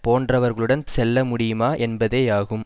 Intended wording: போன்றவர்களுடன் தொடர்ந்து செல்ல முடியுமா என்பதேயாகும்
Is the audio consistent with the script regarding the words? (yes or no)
no